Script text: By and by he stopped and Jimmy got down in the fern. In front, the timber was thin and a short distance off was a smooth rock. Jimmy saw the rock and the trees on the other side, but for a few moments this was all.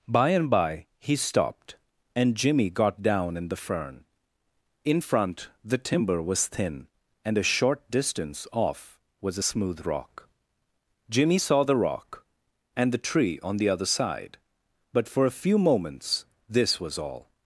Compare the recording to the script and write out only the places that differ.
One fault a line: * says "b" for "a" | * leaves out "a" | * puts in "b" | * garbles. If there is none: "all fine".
* says "tree" for "trees"